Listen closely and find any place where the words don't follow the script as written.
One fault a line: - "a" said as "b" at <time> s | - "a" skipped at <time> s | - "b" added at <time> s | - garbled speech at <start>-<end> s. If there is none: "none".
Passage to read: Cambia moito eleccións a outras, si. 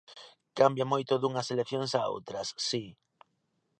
- "dunhas" added at 1.2 s